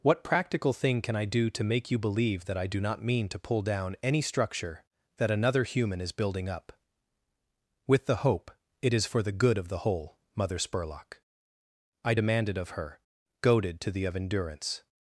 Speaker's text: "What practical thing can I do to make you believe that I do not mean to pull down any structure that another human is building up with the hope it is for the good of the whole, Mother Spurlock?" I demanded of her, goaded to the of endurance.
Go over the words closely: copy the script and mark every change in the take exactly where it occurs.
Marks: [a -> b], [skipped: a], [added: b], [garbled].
"What practical thing can I do to make you believe that I do not mean to pull down any structure that another human is building up with the hope it is for the good of the whole, Mother Spurlock?" I demanded of her, goaded to the of endurance.